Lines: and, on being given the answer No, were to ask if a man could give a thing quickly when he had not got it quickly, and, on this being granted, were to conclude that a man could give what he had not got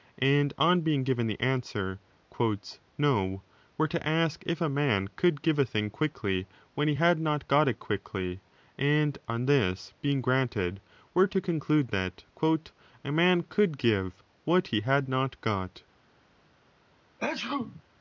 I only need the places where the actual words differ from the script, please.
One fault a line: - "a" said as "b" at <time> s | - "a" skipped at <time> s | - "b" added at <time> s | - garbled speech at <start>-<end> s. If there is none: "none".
none